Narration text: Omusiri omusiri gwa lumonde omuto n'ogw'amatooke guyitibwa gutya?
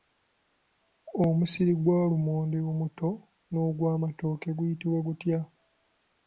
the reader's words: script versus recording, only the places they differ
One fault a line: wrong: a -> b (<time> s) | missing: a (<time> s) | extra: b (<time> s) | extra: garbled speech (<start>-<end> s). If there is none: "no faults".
missing: omusiri (1.7 s)